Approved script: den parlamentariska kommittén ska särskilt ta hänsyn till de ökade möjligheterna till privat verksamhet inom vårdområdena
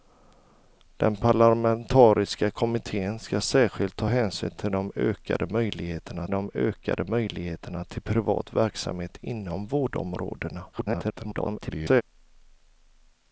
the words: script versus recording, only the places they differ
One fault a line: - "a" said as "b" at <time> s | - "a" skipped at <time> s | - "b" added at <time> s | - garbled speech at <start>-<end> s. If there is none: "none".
- "de ökade möjligheterna" added at 6.3 s
- garbled speech at 10.7-12.0 s